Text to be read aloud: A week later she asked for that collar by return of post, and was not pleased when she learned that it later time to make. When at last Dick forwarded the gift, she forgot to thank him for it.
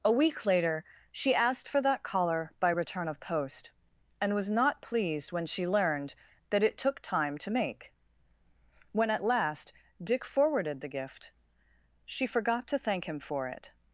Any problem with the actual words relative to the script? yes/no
yes